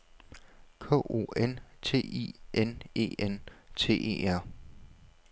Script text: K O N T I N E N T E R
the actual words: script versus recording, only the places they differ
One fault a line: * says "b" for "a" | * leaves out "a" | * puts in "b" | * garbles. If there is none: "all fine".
all fine